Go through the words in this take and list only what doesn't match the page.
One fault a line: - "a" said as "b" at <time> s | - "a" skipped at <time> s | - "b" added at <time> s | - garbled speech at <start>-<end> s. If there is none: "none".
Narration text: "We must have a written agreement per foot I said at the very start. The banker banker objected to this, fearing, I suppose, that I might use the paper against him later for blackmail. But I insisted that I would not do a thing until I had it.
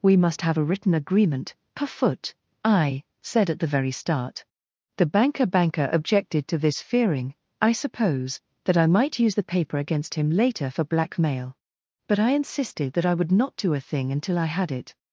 none